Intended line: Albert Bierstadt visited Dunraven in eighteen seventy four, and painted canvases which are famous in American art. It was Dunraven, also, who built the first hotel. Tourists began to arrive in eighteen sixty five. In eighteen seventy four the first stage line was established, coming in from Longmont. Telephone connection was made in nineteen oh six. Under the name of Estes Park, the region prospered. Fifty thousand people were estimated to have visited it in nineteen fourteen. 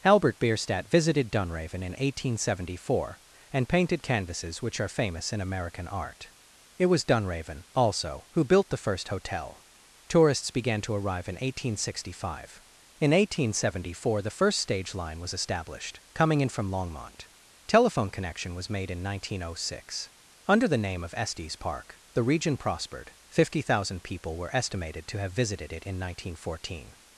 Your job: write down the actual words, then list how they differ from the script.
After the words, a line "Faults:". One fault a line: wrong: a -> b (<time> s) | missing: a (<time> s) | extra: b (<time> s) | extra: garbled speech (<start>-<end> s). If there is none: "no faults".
Albert Bierstadt visited Dunraven in eighteen seventy four, and painted canvases which are famous in American art. It was Dunraven, also, who built the first hotel. Tourists began to arrive in eighteen sixty five. In eighteen seventy four the first stage line was established, coming in from Longmont. Telephone connection was made in nineteen oh six. Under the name of Estes Park, the region prospered. Fifty thousand people were estimated to have visited it in nineteen fourteen.
Faults:
no faults